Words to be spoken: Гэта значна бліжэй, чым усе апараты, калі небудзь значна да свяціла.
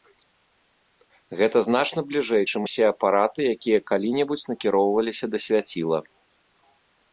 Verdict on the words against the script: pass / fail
fail